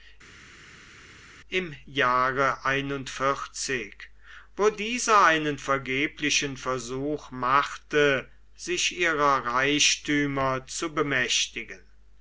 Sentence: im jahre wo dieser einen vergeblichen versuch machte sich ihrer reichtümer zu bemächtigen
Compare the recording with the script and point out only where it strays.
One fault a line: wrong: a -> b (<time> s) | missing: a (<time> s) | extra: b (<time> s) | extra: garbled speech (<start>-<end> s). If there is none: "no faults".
no faults